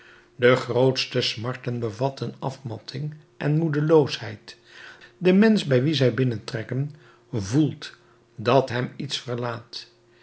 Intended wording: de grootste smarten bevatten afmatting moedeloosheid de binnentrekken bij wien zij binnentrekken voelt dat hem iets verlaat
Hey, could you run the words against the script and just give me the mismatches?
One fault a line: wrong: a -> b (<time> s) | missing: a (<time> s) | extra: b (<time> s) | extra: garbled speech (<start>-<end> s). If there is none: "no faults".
extra: en (3.4 s)
wrong: binnentrekken -> mensch (5.3 s)